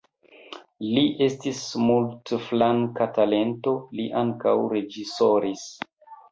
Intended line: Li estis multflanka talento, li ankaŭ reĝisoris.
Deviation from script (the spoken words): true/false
false